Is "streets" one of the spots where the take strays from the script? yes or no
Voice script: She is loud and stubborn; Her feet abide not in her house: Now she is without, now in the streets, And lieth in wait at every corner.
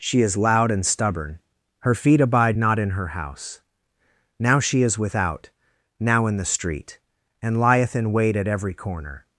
yes